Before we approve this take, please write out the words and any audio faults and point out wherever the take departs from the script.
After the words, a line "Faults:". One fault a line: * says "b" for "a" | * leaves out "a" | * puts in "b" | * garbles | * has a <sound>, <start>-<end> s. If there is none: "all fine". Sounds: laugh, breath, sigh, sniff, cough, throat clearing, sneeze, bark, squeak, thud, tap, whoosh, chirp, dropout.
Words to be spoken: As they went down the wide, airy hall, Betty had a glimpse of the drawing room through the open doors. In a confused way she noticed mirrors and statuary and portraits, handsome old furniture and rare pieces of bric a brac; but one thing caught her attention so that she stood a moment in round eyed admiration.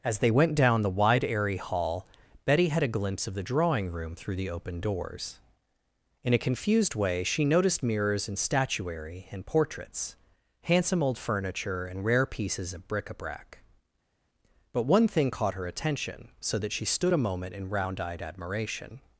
As they went down the wide, airy hall, Betty had a glimpse of the drawing room through the open doors. In a confused way she noticed mirrors and statuary and portraits, handsome old furniture and rare pieces of bric a brac; but one thing caught her attention so that she stood a moment in round eyed admiration.
Faults:
all fine